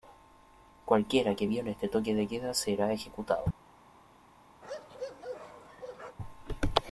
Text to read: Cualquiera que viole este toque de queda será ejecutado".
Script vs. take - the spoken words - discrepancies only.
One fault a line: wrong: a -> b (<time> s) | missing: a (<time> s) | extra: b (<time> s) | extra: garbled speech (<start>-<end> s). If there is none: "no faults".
no faults